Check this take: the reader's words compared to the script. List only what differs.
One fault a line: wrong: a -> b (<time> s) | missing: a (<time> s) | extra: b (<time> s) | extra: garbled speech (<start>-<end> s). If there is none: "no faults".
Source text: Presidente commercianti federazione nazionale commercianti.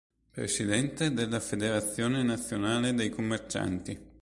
wrong: commercianti -> della (1.1 s)
extra: dei (3.0 s)